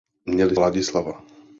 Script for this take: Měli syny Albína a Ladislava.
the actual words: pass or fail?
fail